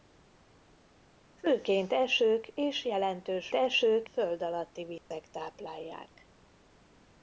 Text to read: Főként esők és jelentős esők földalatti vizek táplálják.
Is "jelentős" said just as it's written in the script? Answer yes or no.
yes